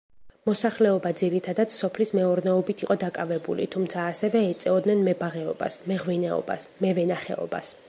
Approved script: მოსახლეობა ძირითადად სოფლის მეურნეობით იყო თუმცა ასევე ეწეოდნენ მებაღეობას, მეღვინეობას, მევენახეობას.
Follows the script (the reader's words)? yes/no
no